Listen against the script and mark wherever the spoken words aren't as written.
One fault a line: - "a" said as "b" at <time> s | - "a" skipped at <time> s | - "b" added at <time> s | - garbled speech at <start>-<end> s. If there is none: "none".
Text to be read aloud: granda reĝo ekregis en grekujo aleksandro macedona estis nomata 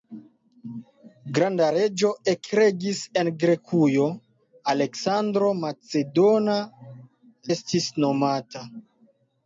none